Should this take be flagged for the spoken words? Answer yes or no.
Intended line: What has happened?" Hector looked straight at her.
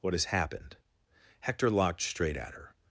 yes